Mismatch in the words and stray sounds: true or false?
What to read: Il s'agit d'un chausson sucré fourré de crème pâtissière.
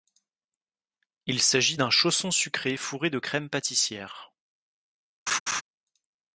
true